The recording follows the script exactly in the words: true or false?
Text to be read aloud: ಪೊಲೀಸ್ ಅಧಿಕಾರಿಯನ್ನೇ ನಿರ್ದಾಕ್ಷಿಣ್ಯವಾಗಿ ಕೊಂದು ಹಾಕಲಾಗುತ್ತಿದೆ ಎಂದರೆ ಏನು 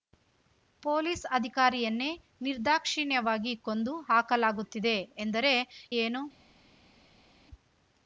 true